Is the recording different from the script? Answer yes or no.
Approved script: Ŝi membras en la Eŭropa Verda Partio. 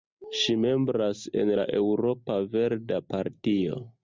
no